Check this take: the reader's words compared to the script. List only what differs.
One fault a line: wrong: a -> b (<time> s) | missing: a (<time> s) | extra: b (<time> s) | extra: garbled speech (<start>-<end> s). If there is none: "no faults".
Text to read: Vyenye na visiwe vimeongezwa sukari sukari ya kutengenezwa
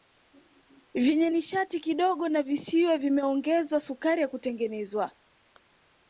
extra: nishati kidogo (1.3 s)
missing: sukari (4.2 s)